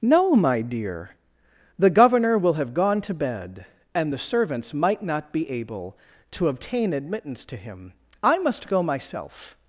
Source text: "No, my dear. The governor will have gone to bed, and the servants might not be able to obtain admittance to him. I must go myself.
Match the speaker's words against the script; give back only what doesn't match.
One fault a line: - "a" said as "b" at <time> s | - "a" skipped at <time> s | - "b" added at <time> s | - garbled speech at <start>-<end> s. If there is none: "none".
none